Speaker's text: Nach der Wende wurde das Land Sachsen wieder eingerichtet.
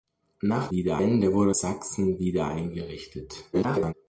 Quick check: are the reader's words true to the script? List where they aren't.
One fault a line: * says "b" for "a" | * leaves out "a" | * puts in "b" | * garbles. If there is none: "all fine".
* says "wieder" for "der"
* leaves out "das Land"
* garbles